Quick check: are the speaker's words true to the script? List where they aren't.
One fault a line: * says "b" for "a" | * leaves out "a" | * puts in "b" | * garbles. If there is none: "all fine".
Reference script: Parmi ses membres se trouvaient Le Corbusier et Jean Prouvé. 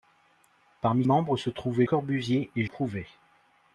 * leaves out "ses"
* leaves out "Le"
* leaves out "Jean"